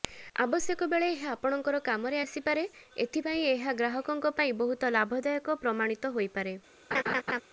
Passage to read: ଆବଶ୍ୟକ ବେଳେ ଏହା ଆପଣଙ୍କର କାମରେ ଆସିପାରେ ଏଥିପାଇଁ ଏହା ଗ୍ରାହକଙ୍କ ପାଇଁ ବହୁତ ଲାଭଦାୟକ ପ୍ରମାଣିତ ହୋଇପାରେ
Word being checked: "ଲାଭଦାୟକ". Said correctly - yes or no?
yes